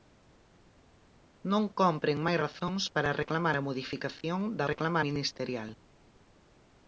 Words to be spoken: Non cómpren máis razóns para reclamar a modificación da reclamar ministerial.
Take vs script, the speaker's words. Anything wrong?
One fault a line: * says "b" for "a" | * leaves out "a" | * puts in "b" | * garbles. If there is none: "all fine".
all fine